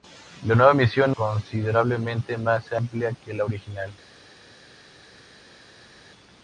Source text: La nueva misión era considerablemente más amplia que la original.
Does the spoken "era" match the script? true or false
false